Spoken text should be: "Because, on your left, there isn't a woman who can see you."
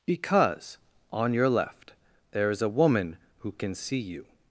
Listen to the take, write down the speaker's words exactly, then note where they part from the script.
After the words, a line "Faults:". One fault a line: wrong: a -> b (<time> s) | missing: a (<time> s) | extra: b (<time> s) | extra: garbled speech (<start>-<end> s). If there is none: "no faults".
"Because, on your left, there is a woman who can see you."
Faults:
wrong: isn't -> is (2.5 s)